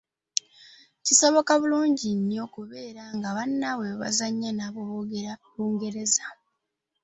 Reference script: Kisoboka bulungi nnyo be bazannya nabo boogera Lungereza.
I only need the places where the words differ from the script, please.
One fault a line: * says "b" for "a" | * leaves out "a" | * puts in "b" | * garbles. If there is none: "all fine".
* puts in "okubeera nga bannaabwe"